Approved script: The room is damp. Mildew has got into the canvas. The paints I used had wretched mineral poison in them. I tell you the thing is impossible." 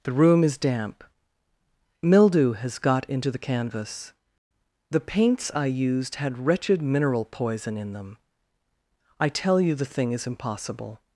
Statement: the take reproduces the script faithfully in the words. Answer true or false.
true